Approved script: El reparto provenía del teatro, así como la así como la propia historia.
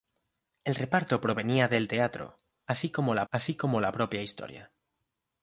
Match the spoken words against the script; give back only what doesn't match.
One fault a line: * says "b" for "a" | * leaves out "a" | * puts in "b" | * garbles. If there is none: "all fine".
all fine